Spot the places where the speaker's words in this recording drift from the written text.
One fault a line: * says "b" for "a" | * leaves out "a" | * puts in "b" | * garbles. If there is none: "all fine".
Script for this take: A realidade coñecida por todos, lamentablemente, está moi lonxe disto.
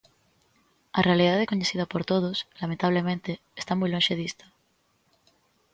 all fine